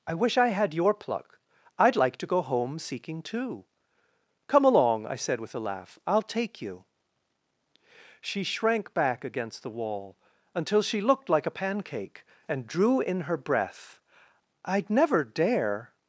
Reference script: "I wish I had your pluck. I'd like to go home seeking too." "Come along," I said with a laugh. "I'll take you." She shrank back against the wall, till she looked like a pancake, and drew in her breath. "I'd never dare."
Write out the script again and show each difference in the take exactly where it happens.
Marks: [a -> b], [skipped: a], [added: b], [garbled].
"I wish I had your pluck. I'd like to go home seeking too." "Come along," I said with a laugh. "I'll take you." She shrank back against the wall, [till -> until] she looked like a pancake, and drew in her breath. "I'd never dare."